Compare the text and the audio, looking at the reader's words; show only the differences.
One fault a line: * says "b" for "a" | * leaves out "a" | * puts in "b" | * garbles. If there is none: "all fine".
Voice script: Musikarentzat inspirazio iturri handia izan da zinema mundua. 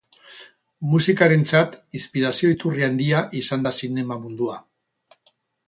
all fine